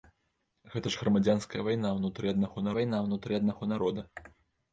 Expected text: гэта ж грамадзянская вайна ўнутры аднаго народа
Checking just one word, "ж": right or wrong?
right